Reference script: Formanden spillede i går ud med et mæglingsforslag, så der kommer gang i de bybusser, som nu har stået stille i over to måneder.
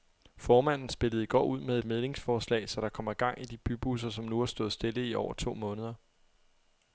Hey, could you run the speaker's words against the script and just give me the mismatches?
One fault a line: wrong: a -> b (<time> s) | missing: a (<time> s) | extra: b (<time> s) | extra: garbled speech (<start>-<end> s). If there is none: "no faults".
no faults